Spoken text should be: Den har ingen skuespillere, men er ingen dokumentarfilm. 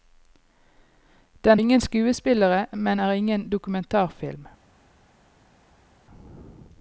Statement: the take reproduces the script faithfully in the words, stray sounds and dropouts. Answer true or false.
false